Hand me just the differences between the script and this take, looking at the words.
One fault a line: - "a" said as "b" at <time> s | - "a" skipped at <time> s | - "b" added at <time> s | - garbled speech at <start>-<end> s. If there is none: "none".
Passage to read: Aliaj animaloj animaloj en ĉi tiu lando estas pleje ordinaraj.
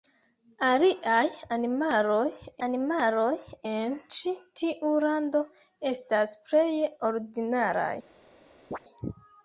none